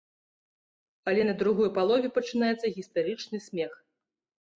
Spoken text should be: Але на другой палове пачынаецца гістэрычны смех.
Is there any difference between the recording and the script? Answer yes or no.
no